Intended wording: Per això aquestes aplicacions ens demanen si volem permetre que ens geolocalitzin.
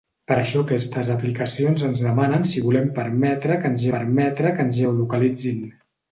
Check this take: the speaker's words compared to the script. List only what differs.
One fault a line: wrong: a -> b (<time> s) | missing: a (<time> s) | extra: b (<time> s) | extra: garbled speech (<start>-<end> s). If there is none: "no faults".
extra: permetre que ens (4.0 s)